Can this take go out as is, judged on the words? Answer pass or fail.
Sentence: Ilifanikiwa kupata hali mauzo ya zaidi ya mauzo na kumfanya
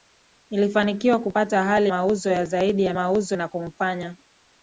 pass